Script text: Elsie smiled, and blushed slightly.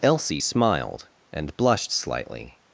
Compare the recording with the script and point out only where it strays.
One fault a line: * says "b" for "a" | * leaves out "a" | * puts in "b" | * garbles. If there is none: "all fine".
all fine